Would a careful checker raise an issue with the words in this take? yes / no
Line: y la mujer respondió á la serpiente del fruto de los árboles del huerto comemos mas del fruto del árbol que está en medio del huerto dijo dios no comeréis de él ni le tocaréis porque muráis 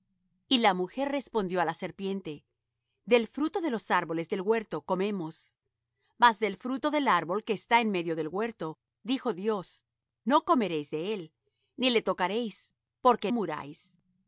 no